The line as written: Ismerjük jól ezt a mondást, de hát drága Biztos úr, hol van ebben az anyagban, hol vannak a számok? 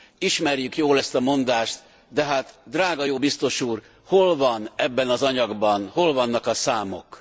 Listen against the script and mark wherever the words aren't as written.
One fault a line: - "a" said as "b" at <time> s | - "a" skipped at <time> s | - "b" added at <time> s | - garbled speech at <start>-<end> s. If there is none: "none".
- "jó" added at 3.0 s